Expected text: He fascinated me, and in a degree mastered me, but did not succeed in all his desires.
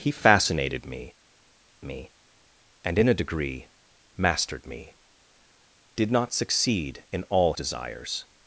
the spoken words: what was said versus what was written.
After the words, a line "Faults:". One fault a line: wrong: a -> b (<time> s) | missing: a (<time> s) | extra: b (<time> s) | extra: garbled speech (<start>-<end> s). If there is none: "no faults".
He fascinated me me, and in a degree mastered me, did not succeed in all desires.
Faults:
extra: me (1.8 s)
missing: but (5.0 s)
missing: his (7.5 s)